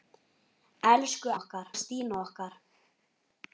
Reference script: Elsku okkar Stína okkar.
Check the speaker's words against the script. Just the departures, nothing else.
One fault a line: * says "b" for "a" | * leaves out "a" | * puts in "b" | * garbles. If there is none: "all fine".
all fine